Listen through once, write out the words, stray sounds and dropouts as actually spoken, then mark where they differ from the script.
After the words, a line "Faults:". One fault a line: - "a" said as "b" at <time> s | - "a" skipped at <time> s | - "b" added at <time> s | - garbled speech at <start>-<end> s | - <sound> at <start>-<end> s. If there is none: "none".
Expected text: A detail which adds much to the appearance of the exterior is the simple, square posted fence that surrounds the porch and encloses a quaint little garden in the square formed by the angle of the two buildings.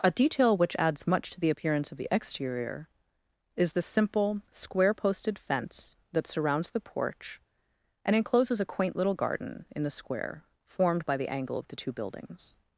A detail which adds much to the appearance of the exterior is the simple, square posted fence that surrounds the porch and encloses a quaint little garden in the square formed by the angle of the two buildings.
Faults:
none